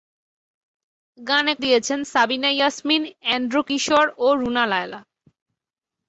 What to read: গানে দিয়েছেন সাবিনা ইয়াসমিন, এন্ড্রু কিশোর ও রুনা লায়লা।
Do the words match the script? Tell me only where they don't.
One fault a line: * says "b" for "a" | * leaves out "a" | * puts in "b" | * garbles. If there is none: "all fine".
all fine